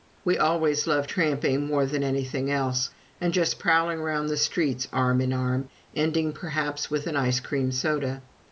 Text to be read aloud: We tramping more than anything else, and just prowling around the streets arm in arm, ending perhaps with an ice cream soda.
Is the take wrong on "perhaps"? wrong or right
right